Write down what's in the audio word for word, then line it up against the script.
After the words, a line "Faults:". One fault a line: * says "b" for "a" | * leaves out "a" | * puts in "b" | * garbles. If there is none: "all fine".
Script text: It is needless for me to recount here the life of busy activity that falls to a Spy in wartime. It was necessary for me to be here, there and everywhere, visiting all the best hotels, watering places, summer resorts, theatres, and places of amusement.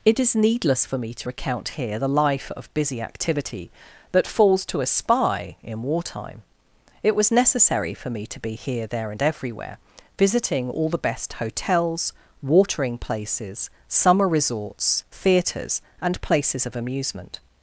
It is needless for me to recount here the life of busy activity that falls to a Spy in wartime. It was necessary for me to be here, there and everywhere, visiting all the best hotels, watering places, summer resorts, theatres, and places of amusement.
Faults:
all fine